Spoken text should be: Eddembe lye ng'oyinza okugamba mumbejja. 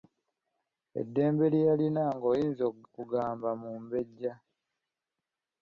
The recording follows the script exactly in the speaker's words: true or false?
false